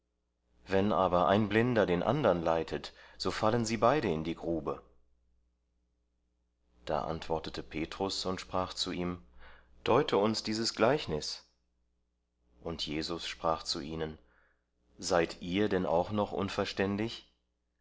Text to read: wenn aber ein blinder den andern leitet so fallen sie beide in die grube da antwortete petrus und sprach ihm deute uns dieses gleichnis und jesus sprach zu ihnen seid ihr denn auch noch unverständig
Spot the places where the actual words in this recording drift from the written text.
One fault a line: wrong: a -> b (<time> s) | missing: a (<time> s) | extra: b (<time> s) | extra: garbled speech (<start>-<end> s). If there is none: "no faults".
extra: zu (8.7 s)